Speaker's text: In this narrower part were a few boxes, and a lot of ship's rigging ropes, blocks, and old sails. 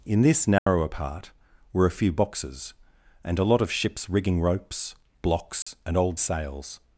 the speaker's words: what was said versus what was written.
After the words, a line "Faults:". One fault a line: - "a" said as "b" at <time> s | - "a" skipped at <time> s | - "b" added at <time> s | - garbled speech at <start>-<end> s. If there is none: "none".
In this narrower part were a few boxes, and a lot of ship's rigging ropes, blocks, and old sails.
Faults:
none